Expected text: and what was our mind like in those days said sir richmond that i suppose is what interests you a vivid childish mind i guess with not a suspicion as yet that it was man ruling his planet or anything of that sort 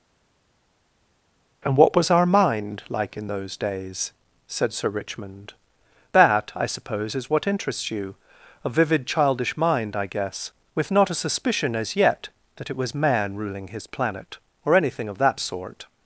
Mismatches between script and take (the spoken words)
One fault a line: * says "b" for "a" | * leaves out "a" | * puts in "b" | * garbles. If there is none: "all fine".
all fine